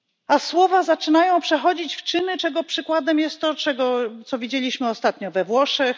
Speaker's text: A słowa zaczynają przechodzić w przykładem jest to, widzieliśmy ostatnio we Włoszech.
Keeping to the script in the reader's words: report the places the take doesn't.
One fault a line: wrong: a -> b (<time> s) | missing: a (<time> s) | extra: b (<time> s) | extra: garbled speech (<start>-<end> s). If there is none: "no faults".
extra: czyny czego (2.0 s)
extra: co (4.3 s)